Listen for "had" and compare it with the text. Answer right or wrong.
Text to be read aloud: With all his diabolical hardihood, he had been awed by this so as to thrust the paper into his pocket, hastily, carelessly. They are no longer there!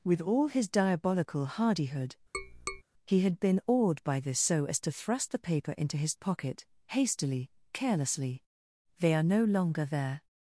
right